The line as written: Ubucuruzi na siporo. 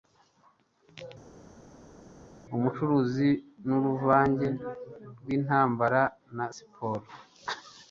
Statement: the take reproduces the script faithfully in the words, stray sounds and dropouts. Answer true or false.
false